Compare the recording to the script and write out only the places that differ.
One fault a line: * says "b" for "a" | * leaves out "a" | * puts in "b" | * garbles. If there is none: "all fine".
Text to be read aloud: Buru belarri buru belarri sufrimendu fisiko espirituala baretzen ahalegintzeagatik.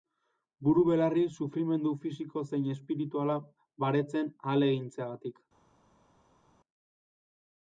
* leaves out "buru belarri"
* puts in "zein"